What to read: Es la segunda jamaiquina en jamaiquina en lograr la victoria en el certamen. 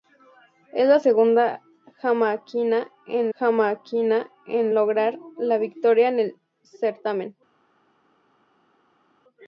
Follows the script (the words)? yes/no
yes